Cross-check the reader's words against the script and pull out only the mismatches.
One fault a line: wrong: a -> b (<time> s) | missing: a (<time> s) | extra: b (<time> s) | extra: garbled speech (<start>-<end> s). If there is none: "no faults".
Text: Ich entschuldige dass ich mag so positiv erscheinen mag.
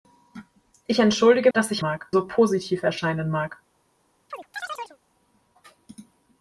no faults